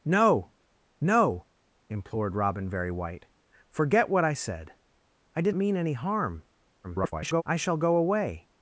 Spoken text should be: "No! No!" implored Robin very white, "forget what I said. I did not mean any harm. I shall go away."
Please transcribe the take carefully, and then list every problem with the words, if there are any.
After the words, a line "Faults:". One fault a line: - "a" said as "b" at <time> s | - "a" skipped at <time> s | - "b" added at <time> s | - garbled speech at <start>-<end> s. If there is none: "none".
"No! No!" implored Robin very white, "forget what I said. I did mean any harm. [garbled] I shall go away."
Faults:
- "not" skipped at 5.5 s
- garbled speech at 6.8-7.4 s